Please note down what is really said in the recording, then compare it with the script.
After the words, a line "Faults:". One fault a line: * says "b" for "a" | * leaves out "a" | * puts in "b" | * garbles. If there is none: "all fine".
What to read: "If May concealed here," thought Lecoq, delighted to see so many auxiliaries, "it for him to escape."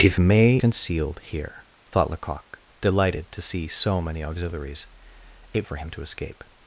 "If May concealed here," thought Lecoq, delighted to see so many auxiliaries, "it for him to escape."
Faults:
all fine